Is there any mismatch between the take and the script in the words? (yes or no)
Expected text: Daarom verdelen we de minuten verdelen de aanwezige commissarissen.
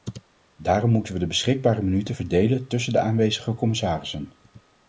yes